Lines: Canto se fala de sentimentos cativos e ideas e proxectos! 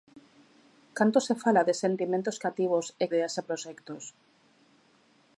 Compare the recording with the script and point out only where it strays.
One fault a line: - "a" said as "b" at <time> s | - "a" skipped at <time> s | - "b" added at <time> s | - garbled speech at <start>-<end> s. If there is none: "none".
none